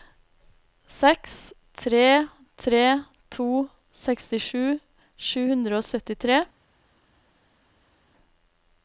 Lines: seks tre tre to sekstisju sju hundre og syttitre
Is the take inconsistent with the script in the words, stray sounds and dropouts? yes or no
no